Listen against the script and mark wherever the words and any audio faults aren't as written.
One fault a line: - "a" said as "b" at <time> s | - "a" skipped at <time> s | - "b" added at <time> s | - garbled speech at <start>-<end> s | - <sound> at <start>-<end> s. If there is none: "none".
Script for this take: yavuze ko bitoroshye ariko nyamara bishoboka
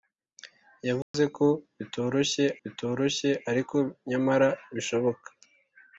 - dropout at 1.0-1.1 s
- "bitoroshye" added at 2.6 s